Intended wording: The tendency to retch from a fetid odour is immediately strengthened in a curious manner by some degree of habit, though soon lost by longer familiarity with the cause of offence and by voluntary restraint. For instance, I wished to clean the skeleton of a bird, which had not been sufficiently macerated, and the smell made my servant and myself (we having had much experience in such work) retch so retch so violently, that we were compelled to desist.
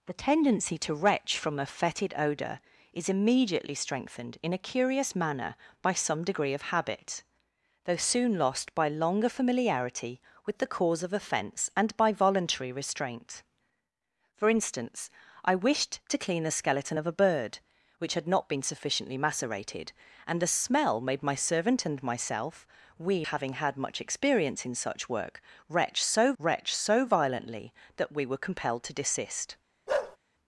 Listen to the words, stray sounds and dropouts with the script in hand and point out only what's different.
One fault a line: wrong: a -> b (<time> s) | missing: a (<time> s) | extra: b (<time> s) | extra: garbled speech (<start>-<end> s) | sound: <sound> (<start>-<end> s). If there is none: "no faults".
sound: bark (29.9-30.2 s)